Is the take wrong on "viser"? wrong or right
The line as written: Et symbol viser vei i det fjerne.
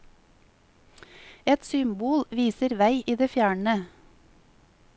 right